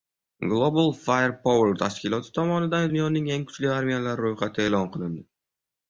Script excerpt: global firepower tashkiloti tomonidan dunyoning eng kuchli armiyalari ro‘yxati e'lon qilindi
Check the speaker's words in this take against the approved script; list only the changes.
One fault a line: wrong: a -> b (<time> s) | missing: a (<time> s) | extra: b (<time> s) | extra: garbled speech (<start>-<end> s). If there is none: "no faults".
no faults